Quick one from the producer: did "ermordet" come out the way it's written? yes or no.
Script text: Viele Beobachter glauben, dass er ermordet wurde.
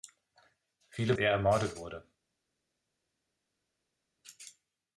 yes